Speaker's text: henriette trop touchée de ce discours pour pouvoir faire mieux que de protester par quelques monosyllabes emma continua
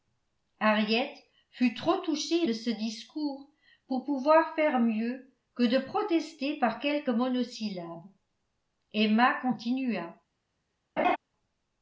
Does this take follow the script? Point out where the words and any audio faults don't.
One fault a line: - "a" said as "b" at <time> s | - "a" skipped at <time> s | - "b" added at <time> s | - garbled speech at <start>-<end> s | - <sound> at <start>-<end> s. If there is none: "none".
- "fut" added at 1.5 s
- laugh at 11.0-11.2 s